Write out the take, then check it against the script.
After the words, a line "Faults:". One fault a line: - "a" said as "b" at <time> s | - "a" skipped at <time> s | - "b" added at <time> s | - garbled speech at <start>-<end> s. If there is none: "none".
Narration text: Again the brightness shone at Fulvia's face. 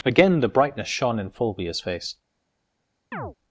Again the brightness shone in Fulvia's face.
Faults:
- "at" said as "in" at 1.2 s